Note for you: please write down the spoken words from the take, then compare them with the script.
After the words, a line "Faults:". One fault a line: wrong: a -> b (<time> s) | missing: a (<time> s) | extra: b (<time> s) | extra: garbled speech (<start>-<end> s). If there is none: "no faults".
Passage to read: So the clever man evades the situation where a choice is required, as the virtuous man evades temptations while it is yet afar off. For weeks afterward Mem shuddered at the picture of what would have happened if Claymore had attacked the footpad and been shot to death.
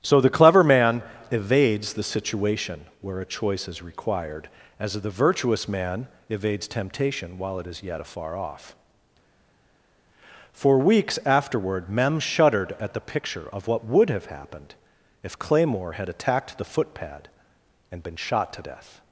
So the clever man evades the situation where a choice is required, as the virtuous man evades temptation while it is yet afar off. For weeks afterward Mem shuddered at the picture of what would have happened if Claymore had attacked the footpad and been shot to death.
Faults:
wrong: temptations -> temptation (6.7 s)